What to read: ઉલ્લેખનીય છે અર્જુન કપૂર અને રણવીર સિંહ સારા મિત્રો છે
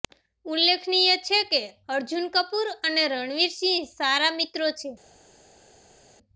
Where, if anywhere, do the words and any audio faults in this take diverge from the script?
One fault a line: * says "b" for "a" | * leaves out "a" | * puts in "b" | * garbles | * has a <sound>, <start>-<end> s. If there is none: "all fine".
* puts in "કે"